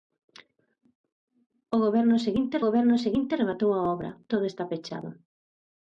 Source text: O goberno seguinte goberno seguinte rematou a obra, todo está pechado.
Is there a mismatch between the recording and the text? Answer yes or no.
no